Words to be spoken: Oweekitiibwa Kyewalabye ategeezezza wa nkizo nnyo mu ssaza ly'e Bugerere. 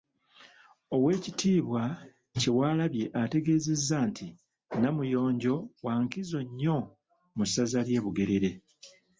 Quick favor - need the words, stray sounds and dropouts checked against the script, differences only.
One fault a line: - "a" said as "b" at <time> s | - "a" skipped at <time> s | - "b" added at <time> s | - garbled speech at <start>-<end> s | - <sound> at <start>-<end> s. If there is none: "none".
- "nti Namuyonjo" added at 4.1 s